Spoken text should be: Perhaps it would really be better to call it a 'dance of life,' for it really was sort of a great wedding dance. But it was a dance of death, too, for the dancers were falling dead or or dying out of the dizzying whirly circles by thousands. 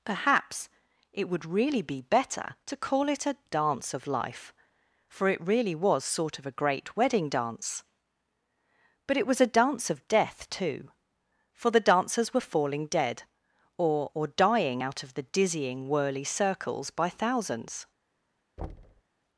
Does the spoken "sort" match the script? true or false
true